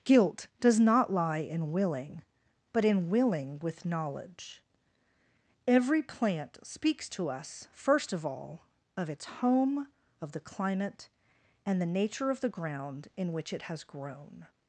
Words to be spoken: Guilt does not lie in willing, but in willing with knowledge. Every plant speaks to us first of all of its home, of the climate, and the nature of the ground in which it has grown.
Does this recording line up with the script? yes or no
yes